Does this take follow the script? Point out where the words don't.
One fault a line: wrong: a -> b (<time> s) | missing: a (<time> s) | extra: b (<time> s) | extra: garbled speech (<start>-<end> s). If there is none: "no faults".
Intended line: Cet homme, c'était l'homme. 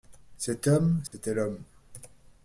no faults